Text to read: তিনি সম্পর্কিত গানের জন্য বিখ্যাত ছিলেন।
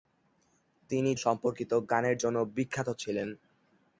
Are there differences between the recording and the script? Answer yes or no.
no